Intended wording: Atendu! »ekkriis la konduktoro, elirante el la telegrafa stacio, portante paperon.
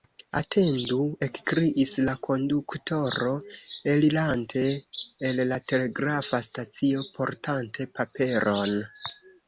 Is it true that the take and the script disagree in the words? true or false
false